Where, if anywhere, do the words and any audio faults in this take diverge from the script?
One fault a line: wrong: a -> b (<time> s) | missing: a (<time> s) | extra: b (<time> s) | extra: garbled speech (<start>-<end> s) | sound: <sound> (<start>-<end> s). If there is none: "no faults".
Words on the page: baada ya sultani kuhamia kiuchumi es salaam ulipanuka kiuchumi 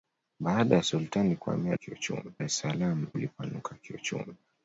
no faults